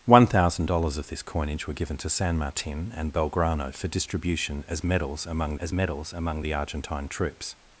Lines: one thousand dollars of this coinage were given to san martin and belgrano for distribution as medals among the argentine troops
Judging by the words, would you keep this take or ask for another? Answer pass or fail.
fail